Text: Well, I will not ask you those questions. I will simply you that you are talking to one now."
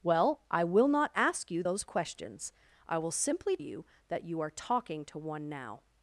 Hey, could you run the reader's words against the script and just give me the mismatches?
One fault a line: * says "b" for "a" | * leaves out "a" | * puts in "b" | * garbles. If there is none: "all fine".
all fine